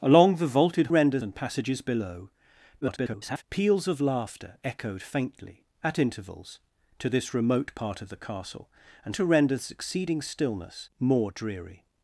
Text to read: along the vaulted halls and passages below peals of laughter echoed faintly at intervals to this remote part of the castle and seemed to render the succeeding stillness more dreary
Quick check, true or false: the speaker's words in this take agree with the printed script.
false